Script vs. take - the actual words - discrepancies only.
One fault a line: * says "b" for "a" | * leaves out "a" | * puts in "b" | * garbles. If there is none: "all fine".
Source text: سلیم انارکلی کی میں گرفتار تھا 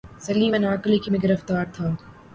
all fine